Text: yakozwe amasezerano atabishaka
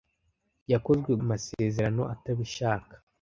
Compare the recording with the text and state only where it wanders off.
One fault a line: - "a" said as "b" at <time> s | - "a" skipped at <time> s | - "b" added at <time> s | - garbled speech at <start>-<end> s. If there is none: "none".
none